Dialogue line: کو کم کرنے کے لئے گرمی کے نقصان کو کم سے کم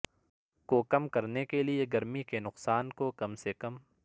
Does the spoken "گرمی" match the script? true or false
true